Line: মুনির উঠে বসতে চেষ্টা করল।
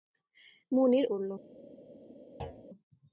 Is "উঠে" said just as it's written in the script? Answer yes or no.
no